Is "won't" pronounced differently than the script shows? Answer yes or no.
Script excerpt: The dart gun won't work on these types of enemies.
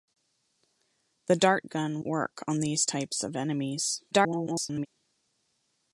yes